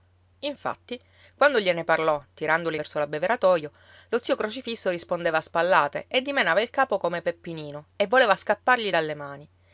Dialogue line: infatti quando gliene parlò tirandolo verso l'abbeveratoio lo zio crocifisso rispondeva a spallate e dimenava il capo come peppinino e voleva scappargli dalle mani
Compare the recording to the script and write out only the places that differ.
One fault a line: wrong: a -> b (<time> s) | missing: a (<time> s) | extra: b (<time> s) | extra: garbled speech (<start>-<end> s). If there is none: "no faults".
no faults